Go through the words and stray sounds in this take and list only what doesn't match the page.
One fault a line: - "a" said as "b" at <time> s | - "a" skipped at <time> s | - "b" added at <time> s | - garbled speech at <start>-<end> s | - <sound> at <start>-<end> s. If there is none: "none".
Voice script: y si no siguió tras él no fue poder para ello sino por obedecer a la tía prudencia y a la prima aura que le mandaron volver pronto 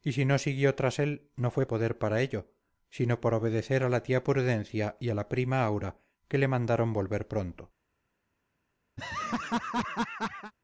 - laugh at 9.0-10.5 s